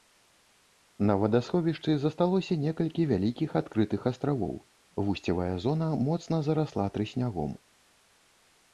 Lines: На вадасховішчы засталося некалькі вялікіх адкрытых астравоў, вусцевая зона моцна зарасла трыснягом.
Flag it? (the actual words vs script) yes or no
no